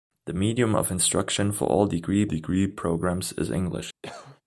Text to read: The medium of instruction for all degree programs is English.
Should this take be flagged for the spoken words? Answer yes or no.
yes